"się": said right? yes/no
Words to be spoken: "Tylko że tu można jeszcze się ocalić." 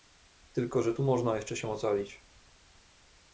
yes